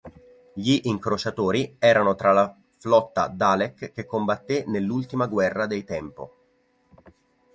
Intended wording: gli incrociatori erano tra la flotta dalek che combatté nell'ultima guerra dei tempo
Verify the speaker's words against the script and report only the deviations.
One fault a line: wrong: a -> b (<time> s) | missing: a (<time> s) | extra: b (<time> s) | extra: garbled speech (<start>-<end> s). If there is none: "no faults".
no faults